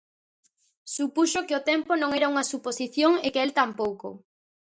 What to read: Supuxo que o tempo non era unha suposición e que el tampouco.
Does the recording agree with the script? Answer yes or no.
yes